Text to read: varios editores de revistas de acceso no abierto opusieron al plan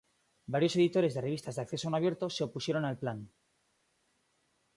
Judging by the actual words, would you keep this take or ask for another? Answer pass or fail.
fail